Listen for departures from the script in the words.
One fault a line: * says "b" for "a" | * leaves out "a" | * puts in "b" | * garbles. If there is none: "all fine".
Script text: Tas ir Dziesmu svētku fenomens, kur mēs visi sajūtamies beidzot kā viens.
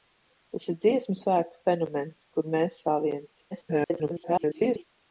* leaves out "visi sajūtamies beidzot"
* garbles